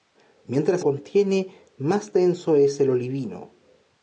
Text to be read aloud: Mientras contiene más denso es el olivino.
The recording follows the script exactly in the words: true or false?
true